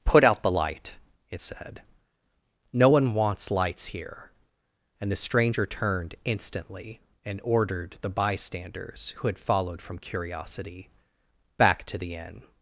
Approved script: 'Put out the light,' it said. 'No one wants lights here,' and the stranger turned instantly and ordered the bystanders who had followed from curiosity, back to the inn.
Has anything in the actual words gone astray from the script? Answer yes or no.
no